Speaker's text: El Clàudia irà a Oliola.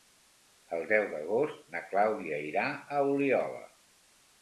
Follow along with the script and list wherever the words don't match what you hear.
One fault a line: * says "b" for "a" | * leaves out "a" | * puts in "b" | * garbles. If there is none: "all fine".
* puts in "deu d'agost na"